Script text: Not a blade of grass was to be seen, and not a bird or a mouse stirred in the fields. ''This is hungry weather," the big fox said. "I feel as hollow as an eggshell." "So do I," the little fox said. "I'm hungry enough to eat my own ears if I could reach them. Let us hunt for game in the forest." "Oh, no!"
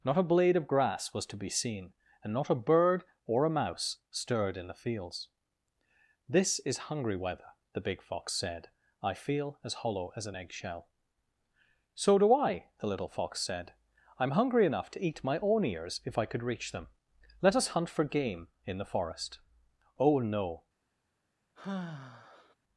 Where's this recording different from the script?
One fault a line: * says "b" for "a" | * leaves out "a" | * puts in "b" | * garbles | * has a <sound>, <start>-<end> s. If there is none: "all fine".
* has a sigh, 21.6-22.6 s